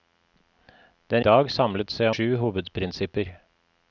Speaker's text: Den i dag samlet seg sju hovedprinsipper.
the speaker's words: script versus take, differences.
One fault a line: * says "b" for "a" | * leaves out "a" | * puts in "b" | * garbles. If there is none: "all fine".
all fine